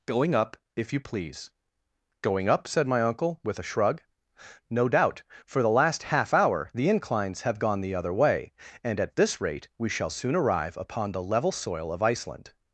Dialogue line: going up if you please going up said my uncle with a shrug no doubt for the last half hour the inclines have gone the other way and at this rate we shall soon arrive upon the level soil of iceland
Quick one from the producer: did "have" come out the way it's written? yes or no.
yes